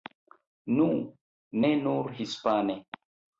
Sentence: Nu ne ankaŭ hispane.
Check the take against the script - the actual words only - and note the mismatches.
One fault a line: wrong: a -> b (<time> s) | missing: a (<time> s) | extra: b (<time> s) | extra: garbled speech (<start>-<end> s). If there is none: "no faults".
wrong: ankaŭ -> nur (1.8 s)